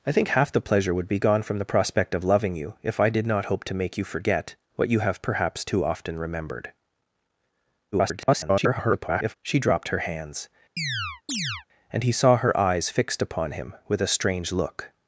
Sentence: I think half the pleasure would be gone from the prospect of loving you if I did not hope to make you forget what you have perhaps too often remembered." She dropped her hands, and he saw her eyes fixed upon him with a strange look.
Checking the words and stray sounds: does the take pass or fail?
fail